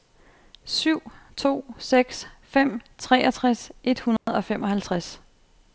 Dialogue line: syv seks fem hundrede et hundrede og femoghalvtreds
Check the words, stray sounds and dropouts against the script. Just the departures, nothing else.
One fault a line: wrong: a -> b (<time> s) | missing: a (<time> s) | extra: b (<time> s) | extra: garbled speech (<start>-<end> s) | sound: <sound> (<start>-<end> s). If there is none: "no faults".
extra: to (1.4 s)
wrong: hundrede -> treogtres (3.0 s)
sound: dropout (4.2-4.3 s)